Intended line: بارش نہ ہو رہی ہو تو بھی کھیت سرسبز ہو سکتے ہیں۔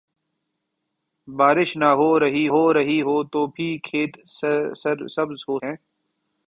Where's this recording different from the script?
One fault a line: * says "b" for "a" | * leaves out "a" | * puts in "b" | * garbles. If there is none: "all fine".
* puts in "رہی ہو"
* leaves out "سکتے"